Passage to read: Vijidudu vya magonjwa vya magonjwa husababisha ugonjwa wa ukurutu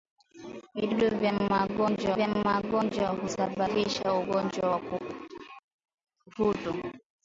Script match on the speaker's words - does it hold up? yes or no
yes